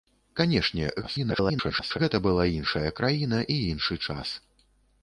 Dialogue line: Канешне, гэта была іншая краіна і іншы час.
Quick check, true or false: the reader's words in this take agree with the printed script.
false